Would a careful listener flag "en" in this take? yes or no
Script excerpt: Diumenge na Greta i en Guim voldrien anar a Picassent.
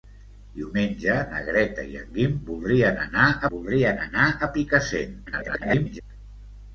no